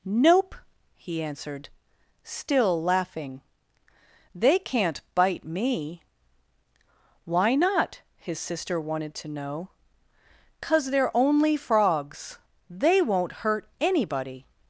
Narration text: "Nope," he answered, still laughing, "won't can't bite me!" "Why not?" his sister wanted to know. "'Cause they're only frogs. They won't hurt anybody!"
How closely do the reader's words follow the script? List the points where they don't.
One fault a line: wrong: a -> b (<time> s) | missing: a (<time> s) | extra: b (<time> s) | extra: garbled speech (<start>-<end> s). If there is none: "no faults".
wrong: won't -> they (4.3 s)